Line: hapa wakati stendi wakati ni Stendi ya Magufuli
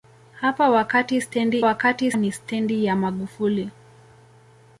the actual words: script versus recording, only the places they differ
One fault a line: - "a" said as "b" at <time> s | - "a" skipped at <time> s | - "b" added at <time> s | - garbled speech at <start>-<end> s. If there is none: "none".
none